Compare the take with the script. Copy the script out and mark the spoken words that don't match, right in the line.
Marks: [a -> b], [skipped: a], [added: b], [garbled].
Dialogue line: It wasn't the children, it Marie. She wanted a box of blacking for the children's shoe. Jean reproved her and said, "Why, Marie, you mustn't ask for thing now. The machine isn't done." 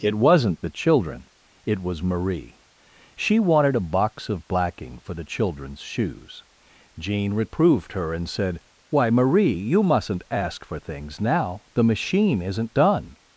It wasn't the children, it [added: was] Marie. She wanted a box of blacking for the children's [shoe. -> shoes] Jean reproved her and said, "Why, Marie, you mustn't ask for [thing -> things] now. The machine isn't done."